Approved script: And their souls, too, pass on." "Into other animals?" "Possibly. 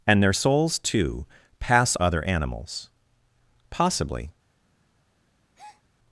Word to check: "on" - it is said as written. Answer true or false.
false